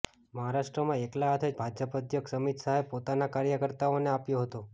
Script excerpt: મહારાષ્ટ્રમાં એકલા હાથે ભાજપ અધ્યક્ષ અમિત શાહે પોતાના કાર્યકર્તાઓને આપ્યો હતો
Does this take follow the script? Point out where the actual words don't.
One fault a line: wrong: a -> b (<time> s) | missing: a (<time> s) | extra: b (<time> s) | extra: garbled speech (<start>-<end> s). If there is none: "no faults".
no faults